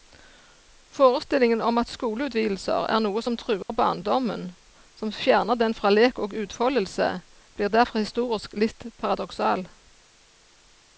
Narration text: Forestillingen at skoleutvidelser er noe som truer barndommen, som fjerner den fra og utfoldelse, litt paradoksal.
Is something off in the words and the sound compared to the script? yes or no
yes